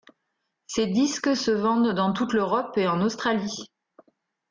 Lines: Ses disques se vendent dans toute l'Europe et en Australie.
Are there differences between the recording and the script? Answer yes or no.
no